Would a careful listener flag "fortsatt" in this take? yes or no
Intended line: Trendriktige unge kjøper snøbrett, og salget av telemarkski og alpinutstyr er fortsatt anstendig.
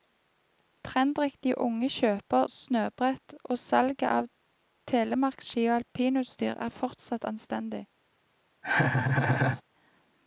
no